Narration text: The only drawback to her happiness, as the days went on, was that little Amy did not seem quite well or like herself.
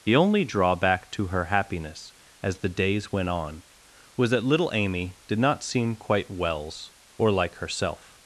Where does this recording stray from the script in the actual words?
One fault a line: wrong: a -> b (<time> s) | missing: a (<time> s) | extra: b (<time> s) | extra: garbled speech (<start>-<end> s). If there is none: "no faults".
wrong: well -> wells (6.3 s)